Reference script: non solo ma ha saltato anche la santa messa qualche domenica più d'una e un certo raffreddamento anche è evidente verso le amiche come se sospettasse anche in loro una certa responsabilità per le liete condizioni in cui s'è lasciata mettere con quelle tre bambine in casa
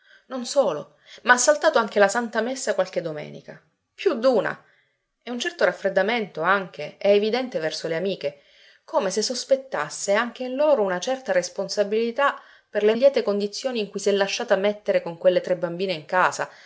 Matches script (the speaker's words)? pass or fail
pass